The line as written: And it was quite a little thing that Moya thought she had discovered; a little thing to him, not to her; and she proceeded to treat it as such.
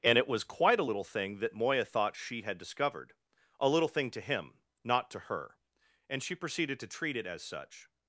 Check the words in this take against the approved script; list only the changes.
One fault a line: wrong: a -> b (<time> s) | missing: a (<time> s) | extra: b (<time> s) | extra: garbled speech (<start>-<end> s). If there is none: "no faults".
no faults